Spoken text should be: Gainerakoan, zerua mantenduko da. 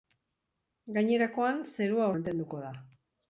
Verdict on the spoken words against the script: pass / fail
pass